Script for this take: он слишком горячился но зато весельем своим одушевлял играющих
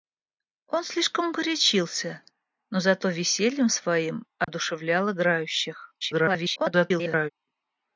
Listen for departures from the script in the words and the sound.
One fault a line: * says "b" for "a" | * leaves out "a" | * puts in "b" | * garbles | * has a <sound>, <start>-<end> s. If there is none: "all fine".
* has a dropout, 4.4-4.5 s
* garbles